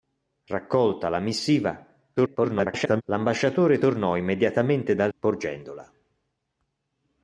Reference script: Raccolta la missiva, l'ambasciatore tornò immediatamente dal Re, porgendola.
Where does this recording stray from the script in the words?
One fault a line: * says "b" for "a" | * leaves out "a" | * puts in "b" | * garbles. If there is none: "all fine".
* garbles
* leaves out "Re"